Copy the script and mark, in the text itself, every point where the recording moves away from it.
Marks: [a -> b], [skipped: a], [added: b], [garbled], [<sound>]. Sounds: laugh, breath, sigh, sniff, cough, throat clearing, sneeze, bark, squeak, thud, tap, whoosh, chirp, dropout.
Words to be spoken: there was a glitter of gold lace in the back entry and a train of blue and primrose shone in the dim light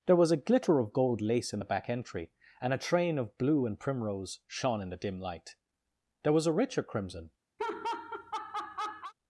there was a glitter of gold lace in the back entry and a train of blue and primrose shone in the dim light [added: there was a richer crimson] [laugh]